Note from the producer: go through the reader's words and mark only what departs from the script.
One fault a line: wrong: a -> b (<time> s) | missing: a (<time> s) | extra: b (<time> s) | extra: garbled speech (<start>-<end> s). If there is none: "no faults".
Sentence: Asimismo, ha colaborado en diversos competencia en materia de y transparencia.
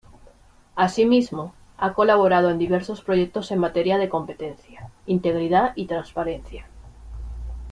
wrong: competencia -> proyectos (3.0 s)
extra: competencia integridad (4.1 s)